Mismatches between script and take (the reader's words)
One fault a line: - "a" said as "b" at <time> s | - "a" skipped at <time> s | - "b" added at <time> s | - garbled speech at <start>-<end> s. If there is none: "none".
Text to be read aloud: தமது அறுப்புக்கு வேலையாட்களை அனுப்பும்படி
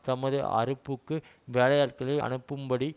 none